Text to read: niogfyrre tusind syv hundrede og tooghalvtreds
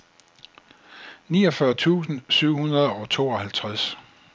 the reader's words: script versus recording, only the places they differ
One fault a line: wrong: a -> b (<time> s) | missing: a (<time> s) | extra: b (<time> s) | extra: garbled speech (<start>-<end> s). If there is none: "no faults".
no faults